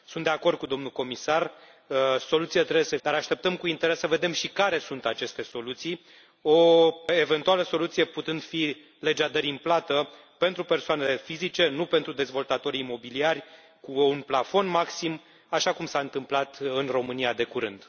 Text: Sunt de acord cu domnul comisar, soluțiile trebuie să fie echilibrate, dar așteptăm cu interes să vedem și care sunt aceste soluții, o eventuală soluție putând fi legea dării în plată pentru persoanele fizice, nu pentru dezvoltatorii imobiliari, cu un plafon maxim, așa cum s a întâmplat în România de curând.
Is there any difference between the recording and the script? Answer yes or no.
yes